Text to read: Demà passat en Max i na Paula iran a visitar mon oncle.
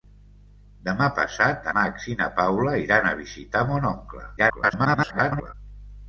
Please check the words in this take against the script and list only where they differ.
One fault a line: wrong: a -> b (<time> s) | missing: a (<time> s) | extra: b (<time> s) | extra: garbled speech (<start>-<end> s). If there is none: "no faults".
missing: en (1.7 s)
extra: garbled speech (4.4-5.5 s)